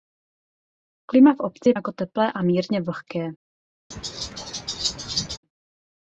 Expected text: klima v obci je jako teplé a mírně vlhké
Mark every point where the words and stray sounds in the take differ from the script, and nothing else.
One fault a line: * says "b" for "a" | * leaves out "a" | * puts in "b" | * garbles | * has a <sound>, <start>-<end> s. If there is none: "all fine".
* has a laugh, 3.9-5.4 s